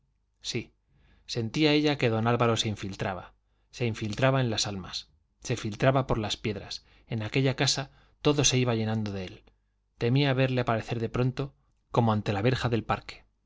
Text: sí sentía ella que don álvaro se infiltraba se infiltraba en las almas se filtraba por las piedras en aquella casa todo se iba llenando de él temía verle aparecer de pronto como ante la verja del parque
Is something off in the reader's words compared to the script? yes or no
no